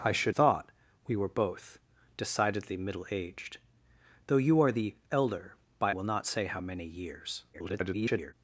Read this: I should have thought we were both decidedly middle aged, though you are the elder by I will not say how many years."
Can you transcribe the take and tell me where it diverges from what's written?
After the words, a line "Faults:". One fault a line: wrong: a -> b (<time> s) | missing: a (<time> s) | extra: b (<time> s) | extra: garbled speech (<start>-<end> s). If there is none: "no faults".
I should thought we were both decidedly middle aged, though you are the elder by will not say how many years." [garbled]
Faults:
missing: have (0.3 s)
missing: I (5.9 s)
extra: garbled speech (7.5-8.3 s)